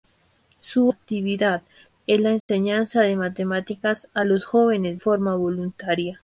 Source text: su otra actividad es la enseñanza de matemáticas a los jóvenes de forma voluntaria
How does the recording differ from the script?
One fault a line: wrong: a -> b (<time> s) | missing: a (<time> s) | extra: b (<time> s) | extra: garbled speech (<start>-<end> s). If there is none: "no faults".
missing: otra (0.9 s)
missing: de (5.0 s)